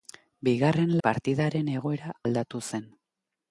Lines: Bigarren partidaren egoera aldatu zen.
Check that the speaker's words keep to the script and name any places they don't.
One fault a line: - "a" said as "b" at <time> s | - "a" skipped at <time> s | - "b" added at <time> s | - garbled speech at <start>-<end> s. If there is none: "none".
none